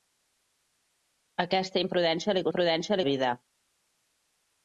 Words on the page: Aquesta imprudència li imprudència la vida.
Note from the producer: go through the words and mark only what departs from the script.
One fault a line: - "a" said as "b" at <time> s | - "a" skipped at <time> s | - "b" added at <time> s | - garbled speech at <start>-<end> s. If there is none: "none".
none